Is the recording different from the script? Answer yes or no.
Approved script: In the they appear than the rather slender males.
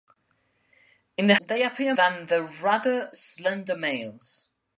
no